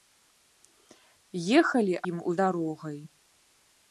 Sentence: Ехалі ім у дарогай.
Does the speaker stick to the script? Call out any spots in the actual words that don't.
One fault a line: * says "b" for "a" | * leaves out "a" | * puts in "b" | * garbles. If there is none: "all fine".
all fine